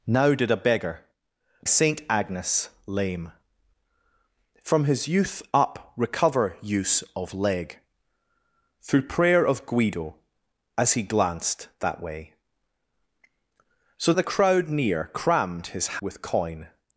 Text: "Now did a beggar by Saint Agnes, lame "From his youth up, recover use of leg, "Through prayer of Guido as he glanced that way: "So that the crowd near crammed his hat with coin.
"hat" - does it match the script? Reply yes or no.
no